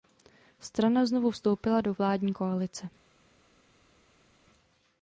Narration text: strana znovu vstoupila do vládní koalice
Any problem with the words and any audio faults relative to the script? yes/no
no